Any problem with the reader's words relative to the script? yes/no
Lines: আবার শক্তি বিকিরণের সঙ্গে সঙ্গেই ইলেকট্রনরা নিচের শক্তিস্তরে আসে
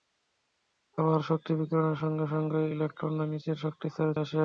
no